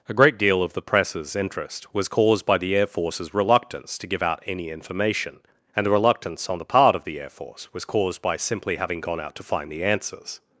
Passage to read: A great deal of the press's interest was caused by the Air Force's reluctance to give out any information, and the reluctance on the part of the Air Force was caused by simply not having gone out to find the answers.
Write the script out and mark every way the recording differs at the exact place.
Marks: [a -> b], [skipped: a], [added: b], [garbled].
A great deal of the press's interest was caused by the Air Force's reluctance to give out any information, and the reluctance on the part of the Air Force was caused by simply [skipped: not] having gone out to find the answers.